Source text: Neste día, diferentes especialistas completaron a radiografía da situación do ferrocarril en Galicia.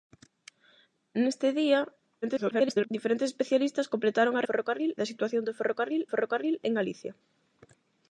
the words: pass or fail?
fail